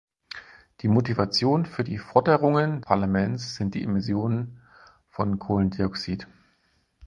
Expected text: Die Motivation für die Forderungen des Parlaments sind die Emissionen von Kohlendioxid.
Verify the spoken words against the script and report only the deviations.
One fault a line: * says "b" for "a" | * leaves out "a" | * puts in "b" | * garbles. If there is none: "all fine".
* leaves out "des"